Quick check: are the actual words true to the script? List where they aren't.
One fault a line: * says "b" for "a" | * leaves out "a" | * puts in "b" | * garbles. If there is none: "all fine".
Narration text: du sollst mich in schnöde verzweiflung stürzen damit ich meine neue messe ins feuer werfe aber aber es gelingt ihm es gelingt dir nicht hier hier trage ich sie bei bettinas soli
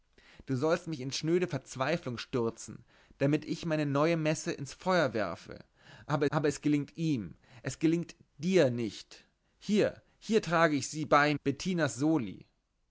all fine